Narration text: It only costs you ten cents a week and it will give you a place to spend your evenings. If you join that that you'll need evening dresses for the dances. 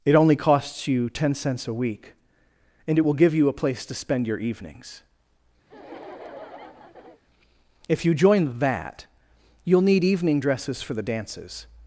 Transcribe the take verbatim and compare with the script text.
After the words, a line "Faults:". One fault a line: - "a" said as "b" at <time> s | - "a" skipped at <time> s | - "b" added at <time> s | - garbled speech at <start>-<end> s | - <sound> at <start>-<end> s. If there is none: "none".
It only costs you ten cents a week and it will give you a place to spend your evenings. If you join that you'll need evening dresses for the dances.
Faults:
- laugh at 5.7-7.2 s
- "that" skipped at 9.1 s